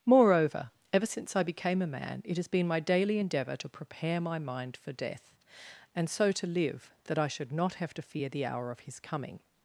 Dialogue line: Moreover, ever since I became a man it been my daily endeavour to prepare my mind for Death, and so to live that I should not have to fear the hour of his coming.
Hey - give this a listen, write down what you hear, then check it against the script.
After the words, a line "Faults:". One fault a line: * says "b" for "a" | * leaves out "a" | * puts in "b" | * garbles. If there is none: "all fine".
Moreover, ever since I became a man it has been my daily endeavour to prepare my mind for Death, and so to live that I should not have to fear the hour of his coming.
Faults:
* puts in "has"